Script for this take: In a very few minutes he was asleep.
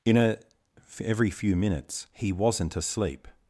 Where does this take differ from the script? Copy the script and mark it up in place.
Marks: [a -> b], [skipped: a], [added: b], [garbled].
In a [very -> every] few minutes he [was -> wasn't] asleep.